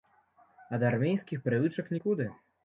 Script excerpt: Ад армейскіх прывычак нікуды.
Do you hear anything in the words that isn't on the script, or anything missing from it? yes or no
no